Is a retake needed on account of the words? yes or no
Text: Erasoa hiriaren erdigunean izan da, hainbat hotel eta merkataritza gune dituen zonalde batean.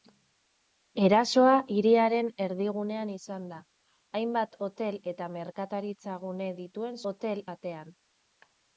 yes